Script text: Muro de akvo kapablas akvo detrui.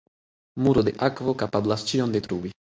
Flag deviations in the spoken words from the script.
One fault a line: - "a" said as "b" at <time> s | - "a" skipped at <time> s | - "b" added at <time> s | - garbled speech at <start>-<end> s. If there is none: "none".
- "akvo" said as "ĉion" at 1.9 s